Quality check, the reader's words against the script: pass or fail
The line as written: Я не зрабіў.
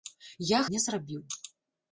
pass